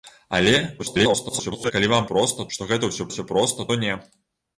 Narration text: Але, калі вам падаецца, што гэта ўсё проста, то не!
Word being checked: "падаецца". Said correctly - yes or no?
no